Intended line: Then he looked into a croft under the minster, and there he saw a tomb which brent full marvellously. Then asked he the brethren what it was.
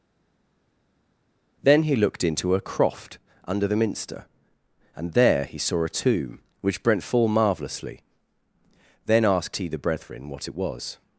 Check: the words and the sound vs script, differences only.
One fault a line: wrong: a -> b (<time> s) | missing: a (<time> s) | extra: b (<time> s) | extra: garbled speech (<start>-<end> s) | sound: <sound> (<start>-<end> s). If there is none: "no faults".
no faults